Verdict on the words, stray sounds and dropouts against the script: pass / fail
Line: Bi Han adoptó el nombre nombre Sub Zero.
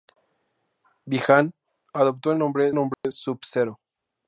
fail